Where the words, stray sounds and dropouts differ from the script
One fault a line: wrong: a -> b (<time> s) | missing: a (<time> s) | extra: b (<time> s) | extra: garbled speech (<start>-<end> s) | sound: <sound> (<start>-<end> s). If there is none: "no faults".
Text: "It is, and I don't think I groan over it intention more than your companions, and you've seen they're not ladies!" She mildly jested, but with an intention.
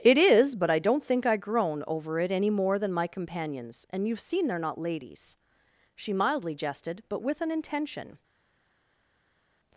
wrong: and -> but (0.6 s)
wrong: intention -> any (2.3 s)
wrong: your -> my (2.9 s)